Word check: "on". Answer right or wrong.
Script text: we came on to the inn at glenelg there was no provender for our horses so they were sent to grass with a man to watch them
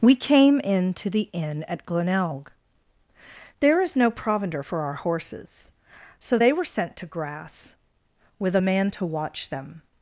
wrong